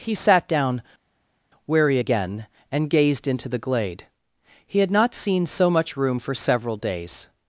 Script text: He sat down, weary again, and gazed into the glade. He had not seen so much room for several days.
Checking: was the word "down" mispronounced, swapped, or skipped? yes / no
no